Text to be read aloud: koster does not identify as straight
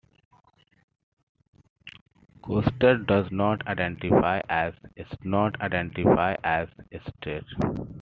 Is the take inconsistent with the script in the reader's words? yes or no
yes